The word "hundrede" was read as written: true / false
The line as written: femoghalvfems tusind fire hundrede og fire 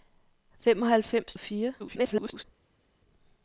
false